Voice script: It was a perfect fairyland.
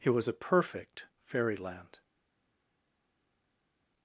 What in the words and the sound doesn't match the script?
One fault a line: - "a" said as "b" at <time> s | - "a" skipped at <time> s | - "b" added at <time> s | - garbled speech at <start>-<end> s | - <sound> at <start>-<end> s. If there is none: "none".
none